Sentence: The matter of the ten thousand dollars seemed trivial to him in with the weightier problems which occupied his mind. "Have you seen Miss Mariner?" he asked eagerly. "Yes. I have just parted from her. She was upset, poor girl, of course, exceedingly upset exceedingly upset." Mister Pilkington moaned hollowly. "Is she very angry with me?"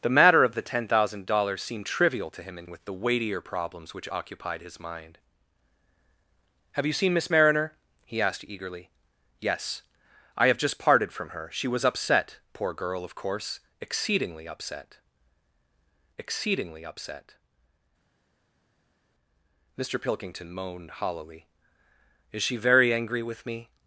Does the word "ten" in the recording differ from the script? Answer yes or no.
no